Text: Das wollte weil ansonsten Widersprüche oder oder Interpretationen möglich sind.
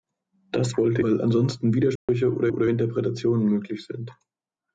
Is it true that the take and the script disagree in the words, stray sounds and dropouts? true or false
true